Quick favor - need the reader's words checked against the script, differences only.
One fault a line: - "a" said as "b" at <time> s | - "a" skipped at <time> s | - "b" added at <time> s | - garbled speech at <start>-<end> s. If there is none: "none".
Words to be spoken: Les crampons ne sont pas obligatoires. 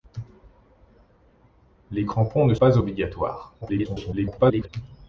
- "sont" skipped at 2.5 s
- garbled speech at 3.6-4.7 s